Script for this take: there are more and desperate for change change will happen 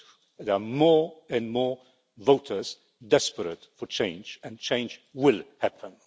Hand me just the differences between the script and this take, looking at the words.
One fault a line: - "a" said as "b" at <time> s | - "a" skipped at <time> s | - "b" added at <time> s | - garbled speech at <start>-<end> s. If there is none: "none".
- "more voters" added at 1.5 s
- "and" added at 4.4 s